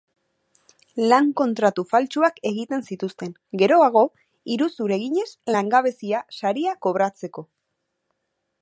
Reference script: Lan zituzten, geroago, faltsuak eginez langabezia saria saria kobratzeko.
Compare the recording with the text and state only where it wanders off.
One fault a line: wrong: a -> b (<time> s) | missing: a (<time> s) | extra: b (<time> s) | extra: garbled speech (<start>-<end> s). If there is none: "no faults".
extra: kontratu faltsuak egiten (1.4 s)
wrong: faltsuak -> iruzur (4.6 s)
missing: saria (6.8 s)